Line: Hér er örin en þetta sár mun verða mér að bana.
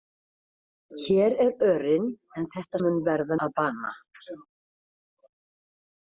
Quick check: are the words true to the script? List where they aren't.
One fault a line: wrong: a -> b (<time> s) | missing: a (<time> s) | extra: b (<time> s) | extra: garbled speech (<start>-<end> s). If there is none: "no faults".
missing: sár (2.8 s)
missing: mér (3.4 s)